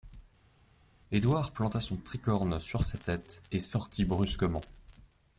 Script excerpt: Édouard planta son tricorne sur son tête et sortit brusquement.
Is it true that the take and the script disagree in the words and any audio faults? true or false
true